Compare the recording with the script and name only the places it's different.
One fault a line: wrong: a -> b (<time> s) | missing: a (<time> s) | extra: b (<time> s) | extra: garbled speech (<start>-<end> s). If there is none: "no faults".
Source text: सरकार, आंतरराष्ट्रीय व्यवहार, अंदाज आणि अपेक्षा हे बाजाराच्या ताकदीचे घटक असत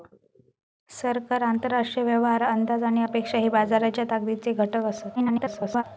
extra: garbled speech (5.2-5.8 s)